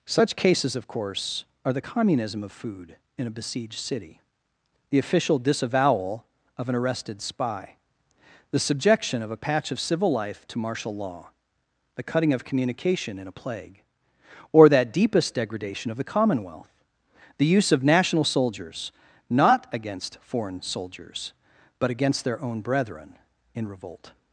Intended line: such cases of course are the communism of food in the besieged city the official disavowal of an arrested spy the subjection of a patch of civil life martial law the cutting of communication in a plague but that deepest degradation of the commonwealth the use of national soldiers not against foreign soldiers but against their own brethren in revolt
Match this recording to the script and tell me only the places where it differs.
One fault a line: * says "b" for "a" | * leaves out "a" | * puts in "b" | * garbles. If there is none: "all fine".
* says "a" for "the"
* puts in "to"
* says "or" for "but"